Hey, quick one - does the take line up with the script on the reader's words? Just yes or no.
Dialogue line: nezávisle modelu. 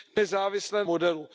yes